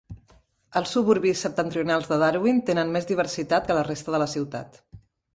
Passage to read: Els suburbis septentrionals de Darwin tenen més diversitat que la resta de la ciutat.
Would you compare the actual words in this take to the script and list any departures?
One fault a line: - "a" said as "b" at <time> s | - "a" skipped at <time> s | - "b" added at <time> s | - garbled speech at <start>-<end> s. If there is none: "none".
none